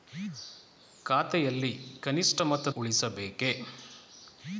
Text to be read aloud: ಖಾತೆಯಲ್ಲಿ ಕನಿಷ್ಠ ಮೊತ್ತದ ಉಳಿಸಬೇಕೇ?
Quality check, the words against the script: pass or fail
pass